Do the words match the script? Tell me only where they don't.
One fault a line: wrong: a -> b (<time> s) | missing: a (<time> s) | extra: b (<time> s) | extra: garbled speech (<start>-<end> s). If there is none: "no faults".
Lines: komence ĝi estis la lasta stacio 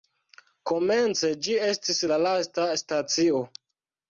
no faults